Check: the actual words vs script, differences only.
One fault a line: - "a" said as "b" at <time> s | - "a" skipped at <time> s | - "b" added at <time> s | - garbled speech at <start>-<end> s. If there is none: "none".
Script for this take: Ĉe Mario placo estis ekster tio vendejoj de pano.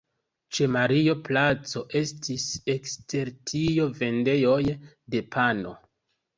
none